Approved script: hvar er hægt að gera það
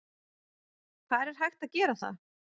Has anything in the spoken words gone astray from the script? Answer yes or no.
no